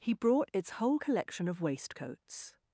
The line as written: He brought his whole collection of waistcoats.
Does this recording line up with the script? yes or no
no